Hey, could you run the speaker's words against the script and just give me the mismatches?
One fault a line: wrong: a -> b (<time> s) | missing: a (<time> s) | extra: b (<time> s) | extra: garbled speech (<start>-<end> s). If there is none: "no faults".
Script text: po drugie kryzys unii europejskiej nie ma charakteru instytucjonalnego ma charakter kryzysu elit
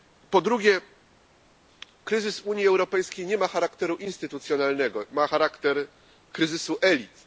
no faults